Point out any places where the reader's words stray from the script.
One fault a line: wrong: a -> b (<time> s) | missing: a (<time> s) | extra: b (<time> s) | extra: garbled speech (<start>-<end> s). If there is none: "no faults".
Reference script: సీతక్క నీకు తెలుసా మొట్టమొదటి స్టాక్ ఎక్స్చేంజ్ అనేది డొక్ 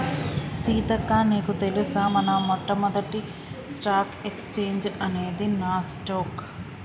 extra: మన (2.1 s)
extra: నాస్ (5.6 s)